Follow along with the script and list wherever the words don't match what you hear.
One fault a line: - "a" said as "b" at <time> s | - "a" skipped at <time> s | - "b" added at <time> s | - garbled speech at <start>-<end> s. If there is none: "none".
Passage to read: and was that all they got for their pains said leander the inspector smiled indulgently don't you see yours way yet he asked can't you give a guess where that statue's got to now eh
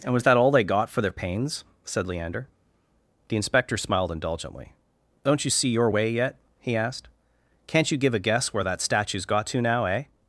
- "yours" said as "your" at 5.7 s